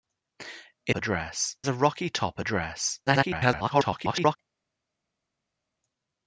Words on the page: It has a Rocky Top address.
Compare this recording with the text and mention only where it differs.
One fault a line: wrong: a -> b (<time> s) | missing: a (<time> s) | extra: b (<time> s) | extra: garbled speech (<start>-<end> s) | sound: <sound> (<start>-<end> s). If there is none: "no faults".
wrong: has -> address (0.9 s)
extra: garbled speech (3.1-4.4 s)